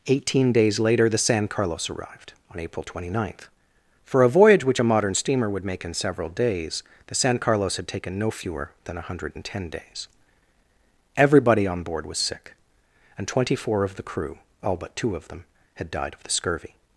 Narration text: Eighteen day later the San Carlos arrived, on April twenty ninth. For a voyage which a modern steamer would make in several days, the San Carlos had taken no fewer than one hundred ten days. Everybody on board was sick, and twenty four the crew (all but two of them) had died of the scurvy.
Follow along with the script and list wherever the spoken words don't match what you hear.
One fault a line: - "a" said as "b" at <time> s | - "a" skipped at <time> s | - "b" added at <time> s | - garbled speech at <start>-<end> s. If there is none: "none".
- "day" said as "days" at 0.5 s
- "of" added at 13.8 s